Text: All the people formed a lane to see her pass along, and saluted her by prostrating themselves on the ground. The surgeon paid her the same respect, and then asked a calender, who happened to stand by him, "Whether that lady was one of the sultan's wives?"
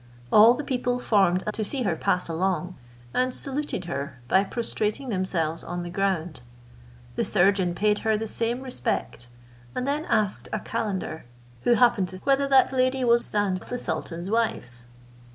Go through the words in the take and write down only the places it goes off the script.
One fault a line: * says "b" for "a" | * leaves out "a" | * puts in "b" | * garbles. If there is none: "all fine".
* leaves out "lane"
* leaves out "stand by him"
* says "stand" for "one"